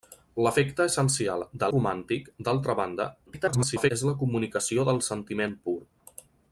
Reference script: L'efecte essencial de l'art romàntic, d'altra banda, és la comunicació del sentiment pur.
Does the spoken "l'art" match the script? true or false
false